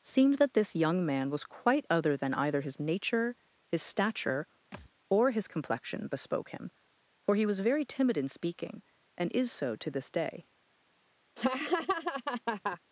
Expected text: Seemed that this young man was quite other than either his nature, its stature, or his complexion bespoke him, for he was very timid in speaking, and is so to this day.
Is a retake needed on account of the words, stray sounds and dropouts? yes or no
yes